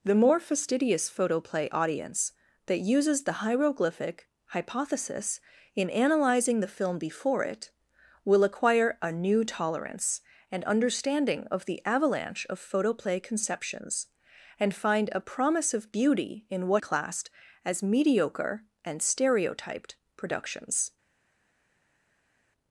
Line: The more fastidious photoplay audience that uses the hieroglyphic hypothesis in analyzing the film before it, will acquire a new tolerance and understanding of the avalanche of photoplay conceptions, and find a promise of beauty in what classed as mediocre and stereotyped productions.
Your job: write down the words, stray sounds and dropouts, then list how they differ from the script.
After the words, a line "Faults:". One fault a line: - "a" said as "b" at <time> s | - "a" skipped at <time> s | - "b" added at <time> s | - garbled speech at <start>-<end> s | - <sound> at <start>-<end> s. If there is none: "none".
The more fastidious photoplay audience that uses the hieroglyphic hypothesis in analyzing the film before it, will acquire a new tolerance and understanding of the avalanche of photoplay conceptions, and find a promise of beauty in what classed as mediocre and stereotyped productions.
Faults:
none